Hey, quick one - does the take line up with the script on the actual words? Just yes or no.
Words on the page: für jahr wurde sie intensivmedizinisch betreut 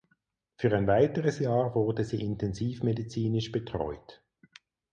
no